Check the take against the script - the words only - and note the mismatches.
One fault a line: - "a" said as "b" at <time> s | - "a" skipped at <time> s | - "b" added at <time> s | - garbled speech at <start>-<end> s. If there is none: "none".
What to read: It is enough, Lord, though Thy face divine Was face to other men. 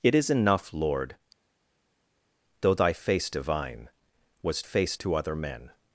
none